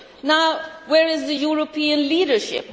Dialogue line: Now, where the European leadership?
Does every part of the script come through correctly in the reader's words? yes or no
no